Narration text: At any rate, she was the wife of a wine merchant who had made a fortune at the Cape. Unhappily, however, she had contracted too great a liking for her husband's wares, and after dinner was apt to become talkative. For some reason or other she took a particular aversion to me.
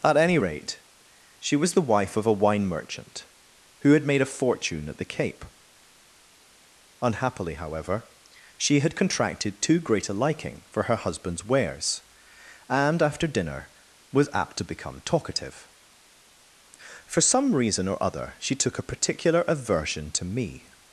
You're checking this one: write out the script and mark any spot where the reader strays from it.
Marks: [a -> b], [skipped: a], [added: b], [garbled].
At any rate, she was the wife of a wine merchant who had made a fortune at the Cape. Unhappily, however, she had contracted too great a liking for her husband's wares, and after dinner was apt to become talkative. For some reason or other she took a particular aversion to me.